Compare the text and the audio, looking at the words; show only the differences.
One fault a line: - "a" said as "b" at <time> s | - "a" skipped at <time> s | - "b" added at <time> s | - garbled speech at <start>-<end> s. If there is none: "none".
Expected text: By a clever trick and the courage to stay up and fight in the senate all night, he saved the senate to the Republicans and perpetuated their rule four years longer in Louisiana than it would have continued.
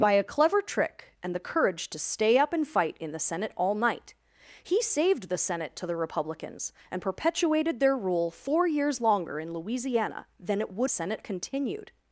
- "have" said as "senate" at 10.9 s